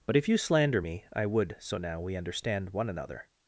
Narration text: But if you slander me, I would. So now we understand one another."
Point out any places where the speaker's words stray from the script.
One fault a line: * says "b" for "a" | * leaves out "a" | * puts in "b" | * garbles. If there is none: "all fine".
all fine